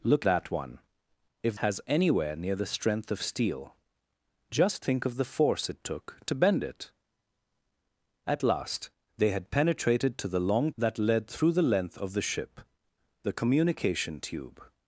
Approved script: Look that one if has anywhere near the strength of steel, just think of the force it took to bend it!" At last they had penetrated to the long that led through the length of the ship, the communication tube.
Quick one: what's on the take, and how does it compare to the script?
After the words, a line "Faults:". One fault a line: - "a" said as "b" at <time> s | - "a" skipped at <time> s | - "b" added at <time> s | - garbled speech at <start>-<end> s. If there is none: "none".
Look that one if has anywhere near the strength of steel, just think of the force it took to bend it!" At last they had penetrated to the long that led through the length of the ship, the communication tube.
Faults:
none